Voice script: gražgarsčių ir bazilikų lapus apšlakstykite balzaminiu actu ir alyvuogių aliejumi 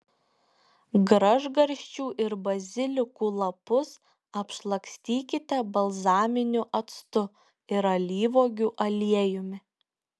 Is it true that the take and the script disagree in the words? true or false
false